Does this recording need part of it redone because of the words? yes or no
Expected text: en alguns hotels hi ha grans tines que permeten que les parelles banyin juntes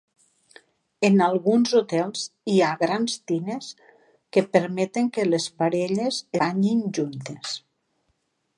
no